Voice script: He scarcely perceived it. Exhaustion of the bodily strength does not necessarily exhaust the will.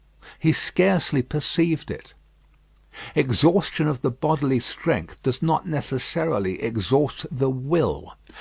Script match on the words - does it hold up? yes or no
yes